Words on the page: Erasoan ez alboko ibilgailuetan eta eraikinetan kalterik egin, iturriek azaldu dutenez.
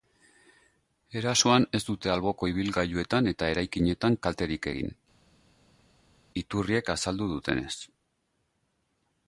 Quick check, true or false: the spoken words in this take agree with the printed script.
false